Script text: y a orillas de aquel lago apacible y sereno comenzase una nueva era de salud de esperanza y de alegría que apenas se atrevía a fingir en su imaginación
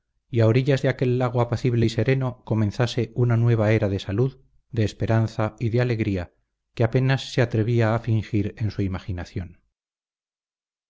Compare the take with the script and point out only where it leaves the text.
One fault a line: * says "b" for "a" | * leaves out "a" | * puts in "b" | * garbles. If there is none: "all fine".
all fine